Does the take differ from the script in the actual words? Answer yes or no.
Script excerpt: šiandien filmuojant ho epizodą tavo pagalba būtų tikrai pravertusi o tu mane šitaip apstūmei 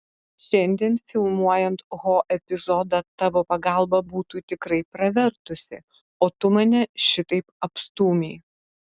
no